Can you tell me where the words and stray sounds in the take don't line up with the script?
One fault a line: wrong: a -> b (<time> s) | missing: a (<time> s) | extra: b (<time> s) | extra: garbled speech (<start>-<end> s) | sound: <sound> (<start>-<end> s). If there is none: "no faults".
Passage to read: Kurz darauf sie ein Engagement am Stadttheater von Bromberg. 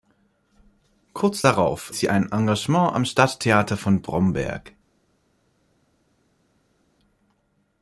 no faults